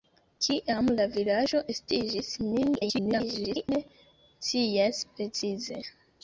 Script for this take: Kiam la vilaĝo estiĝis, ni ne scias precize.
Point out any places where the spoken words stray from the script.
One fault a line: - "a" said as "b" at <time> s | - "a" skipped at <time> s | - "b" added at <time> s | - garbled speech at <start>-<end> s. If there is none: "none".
- garbled speech at 2.8-3.7 s